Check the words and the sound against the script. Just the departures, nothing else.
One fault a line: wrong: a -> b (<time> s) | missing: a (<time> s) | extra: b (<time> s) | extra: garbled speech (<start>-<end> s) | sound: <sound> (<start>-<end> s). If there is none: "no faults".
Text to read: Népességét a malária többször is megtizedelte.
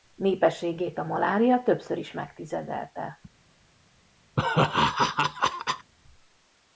sound: laugh (4.4-5.9 s)